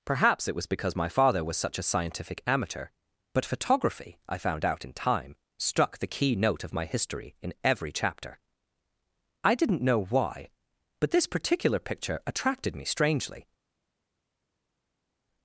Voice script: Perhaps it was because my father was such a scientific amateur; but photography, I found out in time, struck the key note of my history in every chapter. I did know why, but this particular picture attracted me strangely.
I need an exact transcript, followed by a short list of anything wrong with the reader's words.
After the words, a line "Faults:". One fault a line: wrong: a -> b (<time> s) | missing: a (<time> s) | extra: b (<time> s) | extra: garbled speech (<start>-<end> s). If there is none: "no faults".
Perhaps it was because my father was such a scientific amateur; but photography, I found out in time, struck the key note of my history in every chapter. I didn't know why, but this particular picture attracted me strangely.
Faults:
wrong: did -> didn't (9.5 s)